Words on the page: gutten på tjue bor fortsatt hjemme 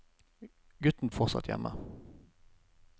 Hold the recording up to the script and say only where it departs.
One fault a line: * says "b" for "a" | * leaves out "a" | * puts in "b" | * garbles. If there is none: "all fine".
* leaves out "på tjue bor"